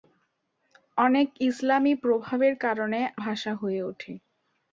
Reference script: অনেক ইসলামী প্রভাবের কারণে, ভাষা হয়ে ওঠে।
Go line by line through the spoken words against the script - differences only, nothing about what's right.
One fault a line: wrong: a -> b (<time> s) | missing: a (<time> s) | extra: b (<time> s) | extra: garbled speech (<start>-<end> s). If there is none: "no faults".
no faults